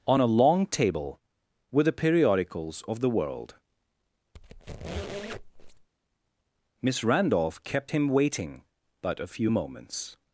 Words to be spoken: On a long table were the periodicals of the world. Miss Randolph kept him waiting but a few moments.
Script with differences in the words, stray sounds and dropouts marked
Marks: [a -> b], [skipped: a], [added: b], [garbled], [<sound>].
On a long table were the periodicals of the world. [squeak] Miss Randolph kept him waiting but a few moments.